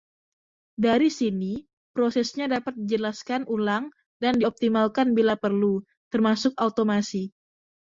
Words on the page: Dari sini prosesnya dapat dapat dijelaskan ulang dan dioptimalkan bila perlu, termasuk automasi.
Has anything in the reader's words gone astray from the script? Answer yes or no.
yes